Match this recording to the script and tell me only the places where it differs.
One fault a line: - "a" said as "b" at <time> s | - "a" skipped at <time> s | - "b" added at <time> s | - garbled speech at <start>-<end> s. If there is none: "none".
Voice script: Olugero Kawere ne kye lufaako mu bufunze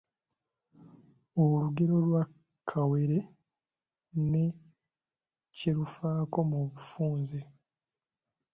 - "lwa" added at 2.0 s